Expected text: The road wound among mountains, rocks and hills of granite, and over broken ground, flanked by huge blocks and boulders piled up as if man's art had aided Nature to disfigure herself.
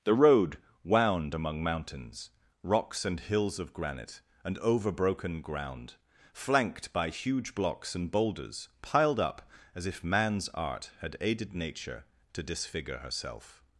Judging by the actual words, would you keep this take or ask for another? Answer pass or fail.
pass